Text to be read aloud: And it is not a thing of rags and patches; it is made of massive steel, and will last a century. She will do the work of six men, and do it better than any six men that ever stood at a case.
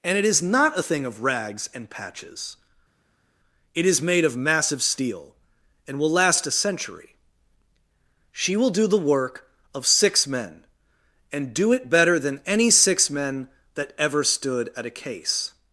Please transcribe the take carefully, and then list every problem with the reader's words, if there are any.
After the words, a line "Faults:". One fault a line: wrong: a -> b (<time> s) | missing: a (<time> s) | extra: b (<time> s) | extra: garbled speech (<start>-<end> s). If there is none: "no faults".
And it is not a thing of rags and patches; it is made of massive steel, and will last a century. She will do the work of six men, and do it better than any six men that ever stood at a case.
Faults:
no faults